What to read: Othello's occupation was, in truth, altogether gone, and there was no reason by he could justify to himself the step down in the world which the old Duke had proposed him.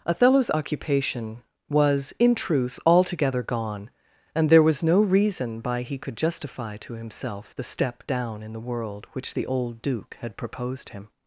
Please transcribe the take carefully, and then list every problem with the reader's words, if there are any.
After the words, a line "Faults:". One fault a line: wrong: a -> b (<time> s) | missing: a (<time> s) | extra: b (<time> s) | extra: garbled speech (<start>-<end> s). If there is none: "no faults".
Othello's occupation was, in truth, altogether gone, and there was no reason by he could justify to himself the step down in the world which the old Duke had proposed him.
Faults:
no faults